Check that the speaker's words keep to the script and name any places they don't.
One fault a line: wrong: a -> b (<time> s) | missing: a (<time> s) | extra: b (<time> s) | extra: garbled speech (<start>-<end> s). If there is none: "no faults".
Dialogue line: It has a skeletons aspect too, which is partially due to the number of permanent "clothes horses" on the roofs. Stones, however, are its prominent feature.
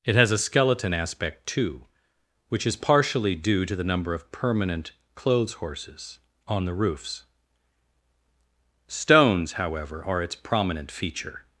wrong: skeletons -> skeleton (0.4 s)